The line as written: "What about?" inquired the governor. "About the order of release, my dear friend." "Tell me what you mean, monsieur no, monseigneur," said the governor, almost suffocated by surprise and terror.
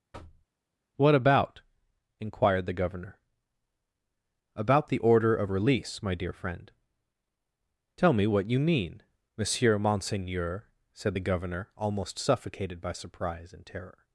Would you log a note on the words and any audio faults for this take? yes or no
yes